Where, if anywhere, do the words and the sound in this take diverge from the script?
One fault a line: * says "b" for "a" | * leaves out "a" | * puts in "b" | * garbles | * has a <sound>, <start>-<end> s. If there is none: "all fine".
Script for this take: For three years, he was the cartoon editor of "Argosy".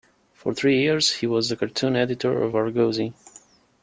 all fine